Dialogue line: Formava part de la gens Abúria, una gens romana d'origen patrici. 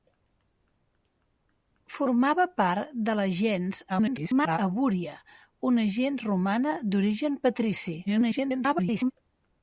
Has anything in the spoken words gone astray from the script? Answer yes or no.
yes